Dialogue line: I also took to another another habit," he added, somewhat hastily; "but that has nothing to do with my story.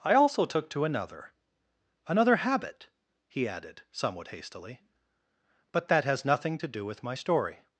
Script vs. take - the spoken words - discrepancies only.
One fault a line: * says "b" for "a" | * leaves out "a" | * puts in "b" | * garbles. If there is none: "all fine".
all fine